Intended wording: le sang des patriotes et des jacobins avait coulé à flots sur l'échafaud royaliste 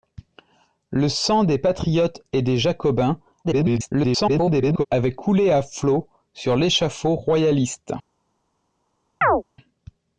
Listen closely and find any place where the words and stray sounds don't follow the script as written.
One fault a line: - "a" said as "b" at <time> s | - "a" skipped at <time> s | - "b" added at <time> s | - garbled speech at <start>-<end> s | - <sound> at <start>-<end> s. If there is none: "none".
- garbled speech at 3.4-4.9 s
- chirp at 9.2-9.4 s